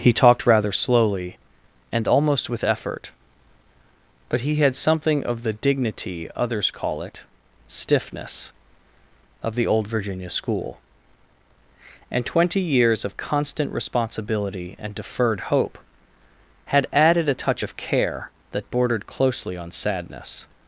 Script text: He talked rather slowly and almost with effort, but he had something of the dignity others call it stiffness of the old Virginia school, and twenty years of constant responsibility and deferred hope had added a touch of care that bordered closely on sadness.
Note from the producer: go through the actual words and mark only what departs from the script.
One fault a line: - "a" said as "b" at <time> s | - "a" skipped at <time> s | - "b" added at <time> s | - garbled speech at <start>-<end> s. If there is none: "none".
none